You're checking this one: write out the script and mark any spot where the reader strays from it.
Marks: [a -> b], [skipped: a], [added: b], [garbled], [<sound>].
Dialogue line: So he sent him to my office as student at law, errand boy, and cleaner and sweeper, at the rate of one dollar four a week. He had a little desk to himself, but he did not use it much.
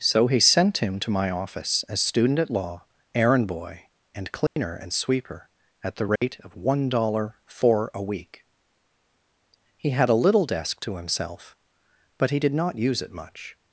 So he sent him to my office as student at law, errand boy, and cleaner [dropout] and sweeper, at the rate [dropout] of one dollar four a week. He had a little desk to himself, but he did not use it much.